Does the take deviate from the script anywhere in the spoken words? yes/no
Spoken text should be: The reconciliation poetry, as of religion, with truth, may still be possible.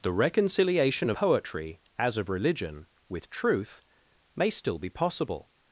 no